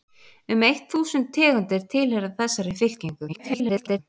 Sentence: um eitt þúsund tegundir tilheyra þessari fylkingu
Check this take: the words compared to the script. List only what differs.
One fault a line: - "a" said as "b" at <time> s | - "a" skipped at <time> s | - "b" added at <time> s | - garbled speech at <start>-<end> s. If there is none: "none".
- garbled speech at 3.3-4.0 s